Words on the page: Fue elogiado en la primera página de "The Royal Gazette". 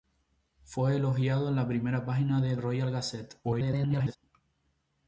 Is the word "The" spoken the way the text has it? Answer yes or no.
no